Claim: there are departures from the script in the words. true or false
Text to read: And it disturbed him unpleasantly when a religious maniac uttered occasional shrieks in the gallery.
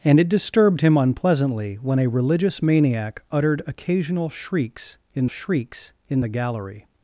true